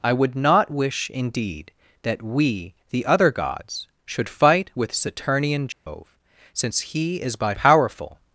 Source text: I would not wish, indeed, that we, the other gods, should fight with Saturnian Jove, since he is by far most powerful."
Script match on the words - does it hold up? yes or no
no